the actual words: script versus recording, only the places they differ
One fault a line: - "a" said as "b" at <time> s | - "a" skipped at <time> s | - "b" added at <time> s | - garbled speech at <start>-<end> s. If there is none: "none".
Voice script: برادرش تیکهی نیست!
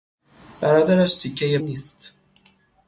none